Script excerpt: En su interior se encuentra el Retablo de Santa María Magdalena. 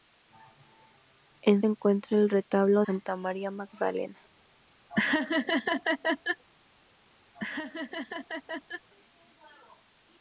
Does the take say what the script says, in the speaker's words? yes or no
no